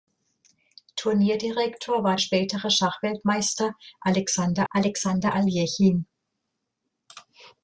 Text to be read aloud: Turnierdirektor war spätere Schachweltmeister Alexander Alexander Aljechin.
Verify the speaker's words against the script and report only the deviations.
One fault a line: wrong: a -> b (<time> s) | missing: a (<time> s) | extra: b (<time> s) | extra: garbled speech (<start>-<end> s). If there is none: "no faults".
no faults